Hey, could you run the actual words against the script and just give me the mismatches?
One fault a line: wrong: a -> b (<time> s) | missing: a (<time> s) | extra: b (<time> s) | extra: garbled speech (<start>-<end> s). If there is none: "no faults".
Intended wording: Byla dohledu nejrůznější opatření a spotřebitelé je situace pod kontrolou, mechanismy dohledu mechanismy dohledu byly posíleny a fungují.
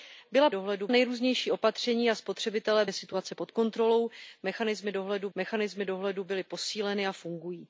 no faults